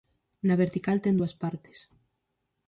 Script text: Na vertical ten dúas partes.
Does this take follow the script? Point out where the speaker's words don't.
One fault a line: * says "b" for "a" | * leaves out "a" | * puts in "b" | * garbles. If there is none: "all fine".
all fine